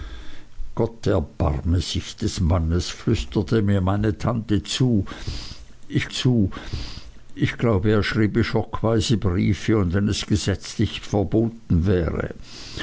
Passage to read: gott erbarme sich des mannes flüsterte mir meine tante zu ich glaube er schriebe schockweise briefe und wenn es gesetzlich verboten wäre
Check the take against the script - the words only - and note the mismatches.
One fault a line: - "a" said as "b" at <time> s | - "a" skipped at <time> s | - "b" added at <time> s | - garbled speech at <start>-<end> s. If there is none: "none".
- "zu ich" added at 6.1 s